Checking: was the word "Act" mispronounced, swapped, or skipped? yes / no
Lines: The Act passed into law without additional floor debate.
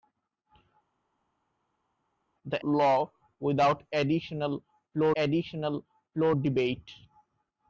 yes